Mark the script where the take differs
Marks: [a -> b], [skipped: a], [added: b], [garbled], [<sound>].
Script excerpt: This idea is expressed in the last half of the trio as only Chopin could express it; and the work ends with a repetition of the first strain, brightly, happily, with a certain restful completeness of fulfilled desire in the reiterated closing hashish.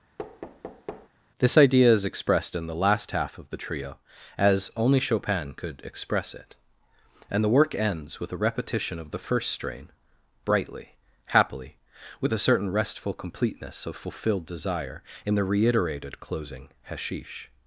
[thud] This idea is expressed in the last half of the trio as only Chopin could express it; and the work ends with a repetition of the first strain, brightly, happily, with a certain restful completeness of fulfilled desire in the reiterated closing hashish.